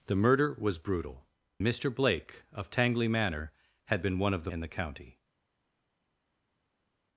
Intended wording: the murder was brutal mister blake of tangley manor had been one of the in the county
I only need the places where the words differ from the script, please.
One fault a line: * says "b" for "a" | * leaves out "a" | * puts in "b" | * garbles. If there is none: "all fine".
all fine